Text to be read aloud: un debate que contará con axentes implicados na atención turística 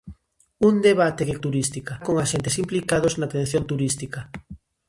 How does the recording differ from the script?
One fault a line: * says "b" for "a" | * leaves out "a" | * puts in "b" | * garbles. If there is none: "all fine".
* says "turística" for "contará"